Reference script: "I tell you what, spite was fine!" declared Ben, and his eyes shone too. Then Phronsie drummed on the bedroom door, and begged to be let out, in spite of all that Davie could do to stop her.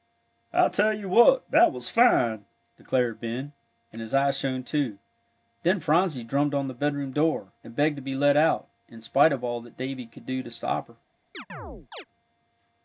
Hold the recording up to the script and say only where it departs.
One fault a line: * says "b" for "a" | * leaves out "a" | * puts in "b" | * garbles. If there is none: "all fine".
* says "that" for "spite"